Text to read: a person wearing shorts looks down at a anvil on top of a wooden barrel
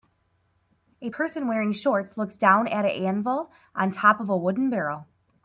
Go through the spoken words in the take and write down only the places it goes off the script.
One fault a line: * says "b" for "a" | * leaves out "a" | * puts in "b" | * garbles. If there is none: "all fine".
all fine